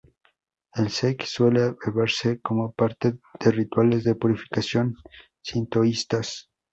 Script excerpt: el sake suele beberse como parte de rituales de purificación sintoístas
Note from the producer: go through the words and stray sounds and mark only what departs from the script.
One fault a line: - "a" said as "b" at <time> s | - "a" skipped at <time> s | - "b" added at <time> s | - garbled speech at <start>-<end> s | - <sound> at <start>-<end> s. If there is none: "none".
none